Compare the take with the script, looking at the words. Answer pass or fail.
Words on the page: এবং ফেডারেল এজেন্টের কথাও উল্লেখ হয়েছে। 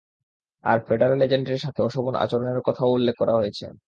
fail